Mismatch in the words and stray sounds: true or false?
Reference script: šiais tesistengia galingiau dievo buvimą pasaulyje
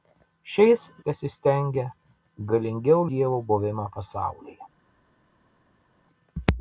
false